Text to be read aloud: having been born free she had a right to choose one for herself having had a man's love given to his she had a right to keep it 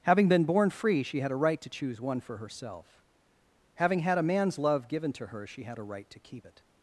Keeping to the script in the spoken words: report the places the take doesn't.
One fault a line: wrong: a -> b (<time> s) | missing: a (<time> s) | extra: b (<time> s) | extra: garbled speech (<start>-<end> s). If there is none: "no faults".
wrong: his -> her (5.3 s)